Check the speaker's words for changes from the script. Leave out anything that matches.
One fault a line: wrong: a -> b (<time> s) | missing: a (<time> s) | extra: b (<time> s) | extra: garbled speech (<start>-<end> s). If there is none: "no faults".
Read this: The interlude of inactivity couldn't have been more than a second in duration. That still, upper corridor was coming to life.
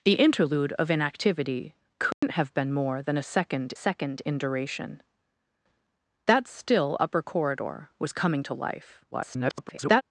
extra: second (3.7 s)
extra: garbled speech (9.1-10.0 s)